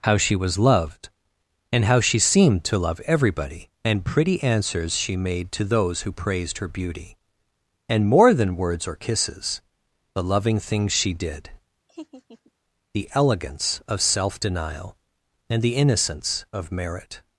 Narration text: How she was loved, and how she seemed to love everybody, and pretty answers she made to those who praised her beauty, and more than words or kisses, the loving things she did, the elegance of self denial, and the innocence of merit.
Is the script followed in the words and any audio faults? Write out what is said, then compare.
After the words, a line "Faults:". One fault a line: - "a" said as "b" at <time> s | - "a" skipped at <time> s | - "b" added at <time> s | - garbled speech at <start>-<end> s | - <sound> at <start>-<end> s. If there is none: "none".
How she was loved, and how she seemed to love everybody, and pretty answers she made to those who praised her beauty, and more than words or kisses, the loving things she did, the elegance of self denial, and the innocence of merit.
Faults:
- laugh at 11.9-12.5 s